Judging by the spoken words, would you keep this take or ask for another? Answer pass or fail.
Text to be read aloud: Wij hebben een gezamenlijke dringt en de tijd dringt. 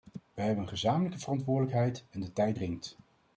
fail